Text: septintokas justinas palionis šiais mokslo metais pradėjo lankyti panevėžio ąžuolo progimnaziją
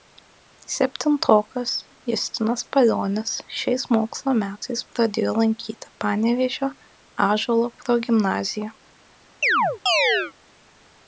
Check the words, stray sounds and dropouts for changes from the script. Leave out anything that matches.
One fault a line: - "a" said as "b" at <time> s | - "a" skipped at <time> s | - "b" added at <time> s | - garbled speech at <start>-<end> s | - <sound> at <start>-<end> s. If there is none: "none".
- chirp at 9.4-10.3 s